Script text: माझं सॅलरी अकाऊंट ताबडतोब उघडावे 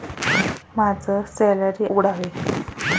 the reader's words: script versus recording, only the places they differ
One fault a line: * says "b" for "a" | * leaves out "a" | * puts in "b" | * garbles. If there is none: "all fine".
* leaves out "अकाऊंट ताबडतोब"